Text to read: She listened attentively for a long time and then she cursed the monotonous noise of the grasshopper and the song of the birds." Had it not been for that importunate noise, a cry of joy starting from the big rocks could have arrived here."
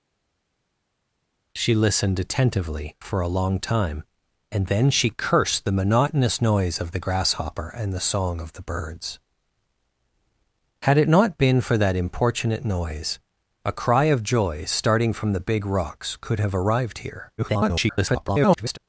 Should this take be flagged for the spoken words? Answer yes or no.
yes